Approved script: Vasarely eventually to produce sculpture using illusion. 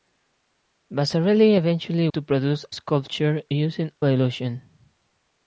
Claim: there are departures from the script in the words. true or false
false